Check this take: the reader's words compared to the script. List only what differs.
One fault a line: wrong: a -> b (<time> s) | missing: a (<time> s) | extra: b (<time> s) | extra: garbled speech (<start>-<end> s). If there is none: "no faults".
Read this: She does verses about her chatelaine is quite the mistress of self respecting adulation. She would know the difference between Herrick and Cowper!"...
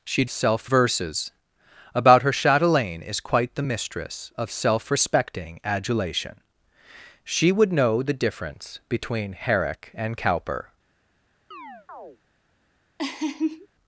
wrong: does -> self (0.3 s)